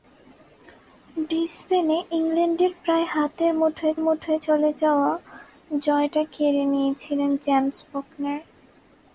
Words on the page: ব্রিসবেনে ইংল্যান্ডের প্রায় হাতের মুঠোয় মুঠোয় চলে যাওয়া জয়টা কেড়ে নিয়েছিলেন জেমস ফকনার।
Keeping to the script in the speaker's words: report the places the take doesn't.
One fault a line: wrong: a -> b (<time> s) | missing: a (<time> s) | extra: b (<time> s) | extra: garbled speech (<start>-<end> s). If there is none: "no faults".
no faults